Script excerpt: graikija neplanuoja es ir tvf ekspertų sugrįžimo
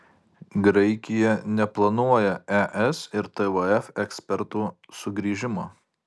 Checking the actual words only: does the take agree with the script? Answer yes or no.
yes